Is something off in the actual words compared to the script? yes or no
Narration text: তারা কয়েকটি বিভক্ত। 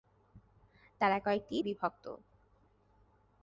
no